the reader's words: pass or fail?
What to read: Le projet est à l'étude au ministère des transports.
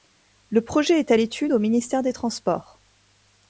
pass